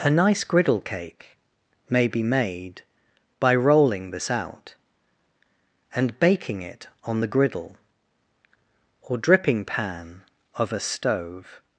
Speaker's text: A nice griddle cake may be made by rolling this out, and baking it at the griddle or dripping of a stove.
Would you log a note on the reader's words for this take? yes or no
yes